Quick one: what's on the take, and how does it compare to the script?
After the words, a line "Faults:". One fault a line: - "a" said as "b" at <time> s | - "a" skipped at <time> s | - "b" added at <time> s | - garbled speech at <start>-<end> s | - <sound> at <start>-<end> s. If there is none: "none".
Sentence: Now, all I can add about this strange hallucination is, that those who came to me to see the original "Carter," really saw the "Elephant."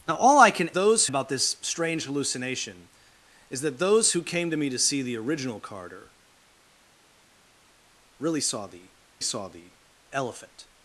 Now, all I can those about this strange hallucination is, that those who came to me to see the original "Carter," really saw the saw the "Elephant."
Faults:
- "add" said as "those" at 0.7 s
- "saw the" added at 9.2 s